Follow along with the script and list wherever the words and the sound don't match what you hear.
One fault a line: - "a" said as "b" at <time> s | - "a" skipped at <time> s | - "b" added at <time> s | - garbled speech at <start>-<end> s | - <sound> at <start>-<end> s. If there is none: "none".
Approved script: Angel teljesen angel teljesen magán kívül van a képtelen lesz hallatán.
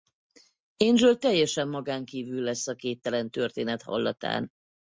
- "angel teljesen" skipped at 1.7 s
- "van" said as "lesz" at 2.4 s
- "lesz" said as "történet" at 3.3 s